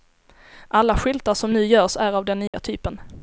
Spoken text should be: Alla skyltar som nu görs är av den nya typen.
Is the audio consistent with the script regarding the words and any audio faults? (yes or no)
no